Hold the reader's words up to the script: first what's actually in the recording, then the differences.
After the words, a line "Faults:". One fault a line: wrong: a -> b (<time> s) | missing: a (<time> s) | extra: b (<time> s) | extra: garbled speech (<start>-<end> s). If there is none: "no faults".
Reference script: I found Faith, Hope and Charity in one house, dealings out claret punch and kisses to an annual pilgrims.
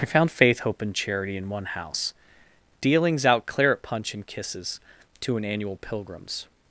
I found Faith, Hope and Charity in one house, dealings out claret punch and kisses to an annual pilgrims.
Faults:
no faults